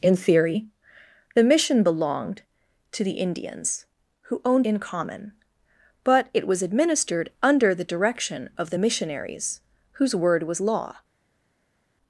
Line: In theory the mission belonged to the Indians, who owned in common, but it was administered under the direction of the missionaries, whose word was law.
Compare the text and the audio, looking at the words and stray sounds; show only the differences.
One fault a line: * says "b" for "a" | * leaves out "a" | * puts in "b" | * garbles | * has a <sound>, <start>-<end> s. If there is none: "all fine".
all fine